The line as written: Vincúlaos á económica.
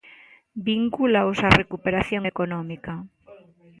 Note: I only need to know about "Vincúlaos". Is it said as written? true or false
true